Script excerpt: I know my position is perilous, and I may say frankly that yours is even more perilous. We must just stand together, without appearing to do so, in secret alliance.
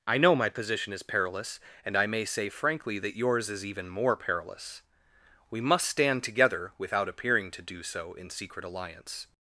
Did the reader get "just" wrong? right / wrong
wrong